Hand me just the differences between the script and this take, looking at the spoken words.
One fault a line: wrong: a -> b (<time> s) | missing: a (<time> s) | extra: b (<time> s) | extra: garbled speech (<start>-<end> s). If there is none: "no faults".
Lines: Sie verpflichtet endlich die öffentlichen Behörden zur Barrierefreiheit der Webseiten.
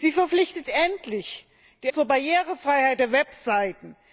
missing: öffentlichen Behörden (1.9 s)